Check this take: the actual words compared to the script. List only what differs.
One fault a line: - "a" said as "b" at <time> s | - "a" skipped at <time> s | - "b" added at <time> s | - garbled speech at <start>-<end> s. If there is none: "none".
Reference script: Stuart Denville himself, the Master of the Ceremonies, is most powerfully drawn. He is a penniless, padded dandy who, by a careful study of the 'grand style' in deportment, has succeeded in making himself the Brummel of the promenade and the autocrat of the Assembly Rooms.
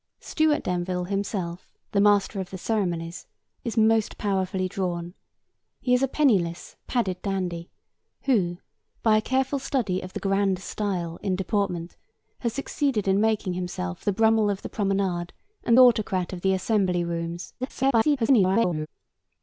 - "the" skipped at 15.8 s
- garbled speech at 17.6-18.9 s